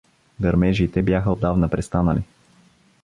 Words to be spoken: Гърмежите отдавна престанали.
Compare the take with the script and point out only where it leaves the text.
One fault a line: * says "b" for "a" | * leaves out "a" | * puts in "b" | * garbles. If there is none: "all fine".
* puts in "бяха"